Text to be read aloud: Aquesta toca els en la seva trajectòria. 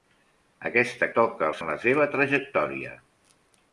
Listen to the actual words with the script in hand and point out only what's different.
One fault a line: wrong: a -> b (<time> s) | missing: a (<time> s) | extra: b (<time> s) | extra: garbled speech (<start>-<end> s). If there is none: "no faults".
no faults